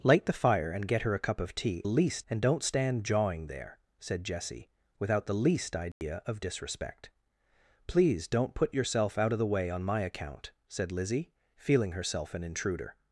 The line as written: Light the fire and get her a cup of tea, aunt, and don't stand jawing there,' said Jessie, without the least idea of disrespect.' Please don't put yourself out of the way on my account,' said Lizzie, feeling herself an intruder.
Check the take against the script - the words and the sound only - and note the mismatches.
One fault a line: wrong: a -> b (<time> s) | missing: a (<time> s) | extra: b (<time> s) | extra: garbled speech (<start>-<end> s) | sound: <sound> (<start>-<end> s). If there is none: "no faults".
wrong: aunt -> least (1.8 s)
sound: dropout (5.9-6.0 s)